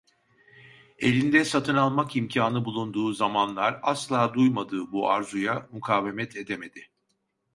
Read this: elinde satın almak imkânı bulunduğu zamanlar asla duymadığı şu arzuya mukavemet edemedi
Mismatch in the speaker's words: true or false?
true